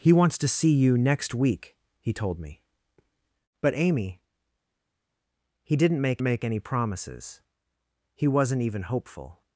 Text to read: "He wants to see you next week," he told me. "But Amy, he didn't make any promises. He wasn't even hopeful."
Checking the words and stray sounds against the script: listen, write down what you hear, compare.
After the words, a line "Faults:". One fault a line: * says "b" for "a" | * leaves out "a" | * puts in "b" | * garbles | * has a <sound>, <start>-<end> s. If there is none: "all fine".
"He wants to see you next week," he told me. "But Amy, he didn't make make any promises. He wasn't even hopeful."
Faults:
* puts in "make"